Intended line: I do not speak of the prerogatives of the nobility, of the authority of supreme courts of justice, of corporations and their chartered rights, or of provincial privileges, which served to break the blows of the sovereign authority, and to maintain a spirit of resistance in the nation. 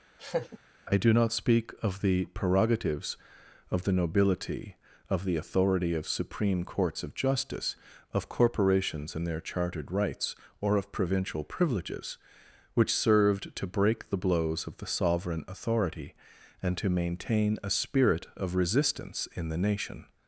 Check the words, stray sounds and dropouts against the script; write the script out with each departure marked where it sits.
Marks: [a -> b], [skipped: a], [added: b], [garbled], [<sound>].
[laugh] I do not speak of the prerogatives of the nobility, of the authority of supreme courts of justice, of corporations and their chartered rights, or of provincial privileges, which served to break the blows of the sovereign authority, and to maintain a spirit of resistance in the nation.